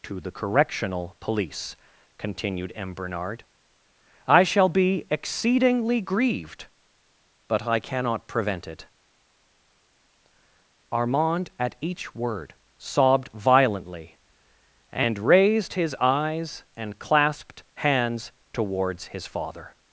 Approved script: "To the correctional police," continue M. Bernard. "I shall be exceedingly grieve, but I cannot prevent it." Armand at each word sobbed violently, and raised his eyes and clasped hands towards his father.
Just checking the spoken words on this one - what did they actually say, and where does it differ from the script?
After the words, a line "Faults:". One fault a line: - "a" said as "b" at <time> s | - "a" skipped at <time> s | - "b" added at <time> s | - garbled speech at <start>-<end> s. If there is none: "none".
"To the correctional police," continued M. Bernard. "I shall be exceedingly grieved, but I cannot prevent it." Armand at each word sobbed violently, and raised his eyes and clasped hands towards his father.
Faults:
- "continue" said as "continued" at 2.2 s
- "grieve" said as "grieved" at 6.0 s